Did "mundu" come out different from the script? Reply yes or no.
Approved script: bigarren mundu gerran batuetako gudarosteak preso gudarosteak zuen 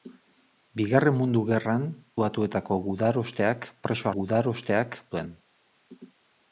no